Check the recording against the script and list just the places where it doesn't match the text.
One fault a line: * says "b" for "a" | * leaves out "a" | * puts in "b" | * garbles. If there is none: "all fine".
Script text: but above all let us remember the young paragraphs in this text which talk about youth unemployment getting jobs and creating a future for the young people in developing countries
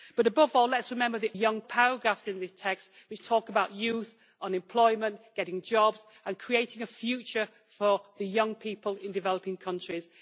all fine